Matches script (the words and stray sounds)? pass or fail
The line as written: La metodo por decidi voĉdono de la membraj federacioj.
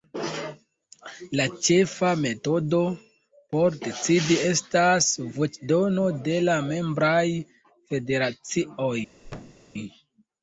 fail